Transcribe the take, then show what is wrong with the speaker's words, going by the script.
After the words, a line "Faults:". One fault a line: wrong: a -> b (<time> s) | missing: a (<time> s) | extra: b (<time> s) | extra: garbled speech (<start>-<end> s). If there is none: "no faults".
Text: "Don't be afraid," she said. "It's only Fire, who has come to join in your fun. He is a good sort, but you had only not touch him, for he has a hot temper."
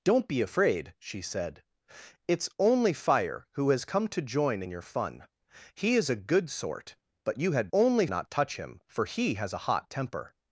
"Don't be afraid," she said. "It's only Fire, who has come to join in your fun. He is a good sort, but you had only not touch him, for he has a hot temper."
Faults:
no faults